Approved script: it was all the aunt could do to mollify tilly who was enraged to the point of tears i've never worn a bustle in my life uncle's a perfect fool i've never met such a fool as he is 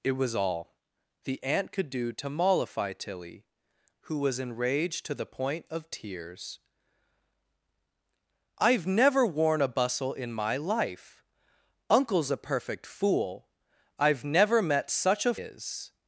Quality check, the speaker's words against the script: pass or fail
fail